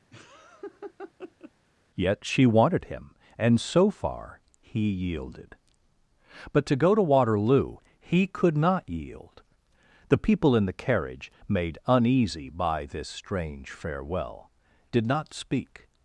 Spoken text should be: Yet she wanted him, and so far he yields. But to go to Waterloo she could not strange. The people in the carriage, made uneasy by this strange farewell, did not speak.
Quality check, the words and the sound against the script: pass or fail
fail